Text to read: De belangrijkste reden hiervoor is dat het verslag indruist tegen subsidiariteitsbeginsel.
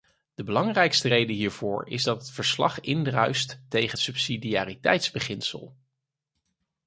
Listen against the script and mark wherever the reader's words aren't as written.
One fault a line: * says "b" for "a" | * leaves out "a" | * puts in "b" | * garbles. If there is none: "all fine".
all fine